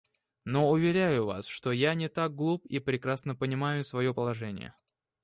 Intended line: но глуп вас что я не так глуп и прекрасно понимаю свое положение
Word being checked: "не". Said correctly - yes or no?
yes